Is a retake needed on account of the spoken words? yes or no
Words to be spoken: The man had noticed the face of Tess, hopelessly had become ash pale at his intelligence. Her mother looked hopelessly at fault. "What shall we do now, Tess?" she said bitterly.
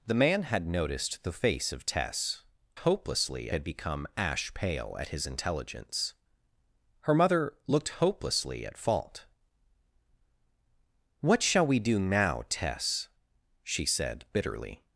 no